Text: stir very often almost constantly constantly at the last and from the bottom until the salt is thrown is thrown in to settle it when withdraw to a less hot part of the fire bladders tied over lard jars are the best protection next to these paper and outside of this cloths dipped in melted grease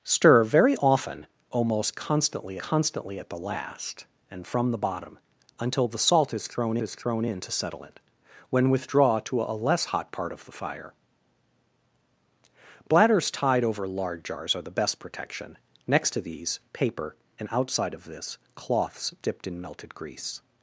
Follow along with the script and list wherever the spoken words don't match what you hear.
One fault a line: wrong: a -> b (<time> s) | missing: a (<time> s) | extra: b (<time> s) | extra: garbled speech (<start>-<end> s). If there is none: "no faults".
no faults